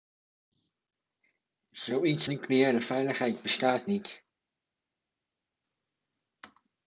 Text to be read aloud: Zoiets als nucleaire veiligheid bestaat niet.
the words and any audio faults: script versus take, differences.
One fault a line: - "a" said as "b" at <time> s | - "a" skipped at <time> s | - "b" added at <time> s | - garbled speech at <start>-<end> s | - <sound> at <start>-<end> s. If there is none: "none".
- "als" skipped at 2.3 s